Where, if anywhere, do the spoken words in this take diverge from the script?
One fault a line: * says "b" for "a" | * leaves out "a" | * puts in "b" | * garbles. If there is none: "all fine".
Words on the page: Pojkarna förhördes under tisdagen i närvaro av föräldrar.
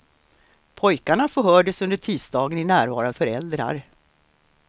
all fine